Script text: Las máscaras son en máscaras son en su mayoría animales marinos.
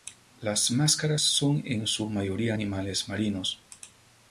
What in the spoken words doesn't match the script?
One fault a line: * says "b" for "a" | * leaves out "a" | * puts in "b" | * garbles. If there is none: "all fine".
* leaves out "máscaras son en"